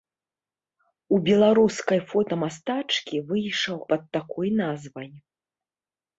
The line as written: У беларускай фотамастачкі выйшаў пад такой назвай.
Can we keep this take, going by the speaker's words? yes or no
yes